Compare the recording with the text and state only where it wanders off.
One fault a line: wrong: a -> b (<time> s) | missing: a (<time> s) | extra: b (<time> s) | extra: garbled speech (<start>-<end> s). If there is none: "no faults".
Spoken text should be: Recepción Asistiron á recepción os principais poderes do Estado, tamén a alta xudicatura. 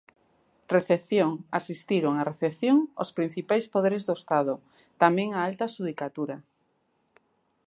no faults